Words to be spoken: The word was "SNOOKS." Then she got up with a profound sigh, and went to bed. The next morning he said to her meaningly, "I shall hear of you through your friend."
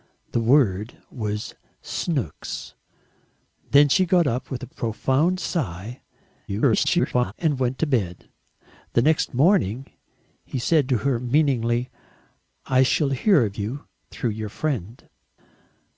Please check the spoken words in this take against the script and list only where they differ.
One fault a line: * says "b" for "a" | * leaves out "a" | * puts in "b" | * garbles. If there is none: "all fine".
* garbles